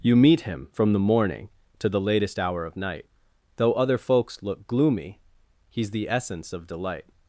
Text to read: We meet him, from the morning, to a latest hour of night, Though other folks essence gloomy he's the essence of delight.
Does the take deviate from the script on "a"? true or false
true